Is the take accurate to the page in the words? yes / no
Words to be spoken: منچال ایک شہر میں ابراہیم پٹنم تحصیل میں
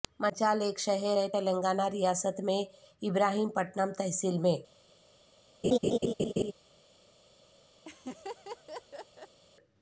no